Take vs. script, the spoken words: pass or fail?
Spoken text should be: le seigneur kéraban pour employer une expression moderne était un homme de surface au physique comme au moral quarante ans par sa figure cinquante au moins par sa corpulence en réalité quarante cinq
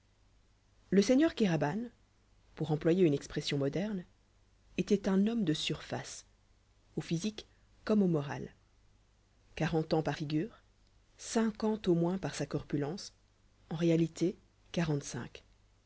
fail